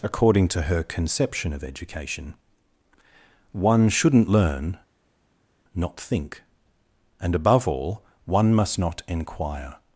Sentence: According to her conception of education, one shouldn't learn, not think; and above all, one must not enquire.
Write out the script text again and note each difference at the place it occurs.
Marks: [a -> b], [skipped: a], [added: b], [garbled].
According to her conception of education, one shouldn't learn, not think; and above all, one must not enquire.